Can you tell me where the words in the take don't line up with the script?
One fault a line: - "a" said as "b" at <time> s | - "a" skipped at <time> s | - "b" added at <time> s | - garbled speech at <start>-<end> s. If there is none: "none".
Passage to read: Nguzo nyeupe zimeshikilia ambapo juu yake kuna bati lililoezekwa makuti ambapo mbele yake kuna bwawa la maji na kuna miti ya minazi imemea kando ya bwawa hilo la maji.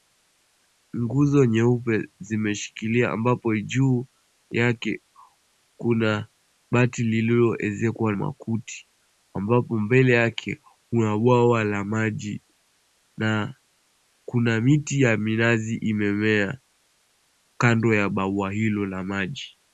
none